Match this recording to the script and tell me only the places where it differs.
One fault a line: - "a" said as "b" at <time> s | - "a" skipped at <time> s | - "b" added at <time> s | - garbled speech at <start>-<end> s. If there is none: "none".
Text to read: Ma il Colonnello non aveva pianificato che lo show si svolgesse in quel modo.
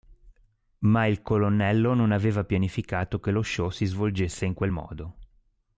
none